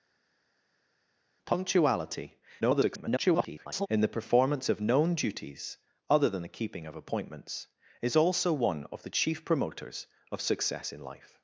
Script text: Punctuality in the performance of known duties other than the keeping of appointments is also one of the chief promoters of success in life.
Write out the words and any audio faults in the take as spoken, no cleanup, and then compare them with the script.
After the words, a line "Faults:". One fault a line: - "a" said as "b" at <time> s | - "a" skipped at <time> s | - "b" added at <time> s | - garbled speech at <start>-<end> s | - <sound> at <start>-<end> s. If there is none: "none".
Punctuality [garbled] in the performance of known duties other than the keeping of appointments is also one of the chief promoters of success in life.
Faults:
- garbled speech at 2.6-3.9 s